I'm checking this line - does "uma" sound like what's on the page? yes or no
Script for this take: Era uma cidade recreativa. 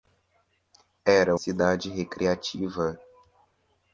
no